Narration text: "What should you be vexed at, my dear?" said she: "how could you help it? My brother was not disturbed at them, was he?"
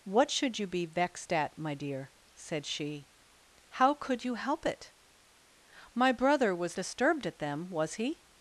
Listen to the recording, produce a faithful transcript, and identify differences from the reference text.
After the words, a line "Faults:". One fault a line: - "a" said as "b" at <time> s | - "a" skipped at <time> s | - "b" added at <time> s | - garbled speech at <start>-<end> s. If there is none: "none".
"What should you be vexed at, my dear?" said she: "how could you help it? My brother was disturbed at them, was he?"
Faults:
- "not" skipped at 6.8 s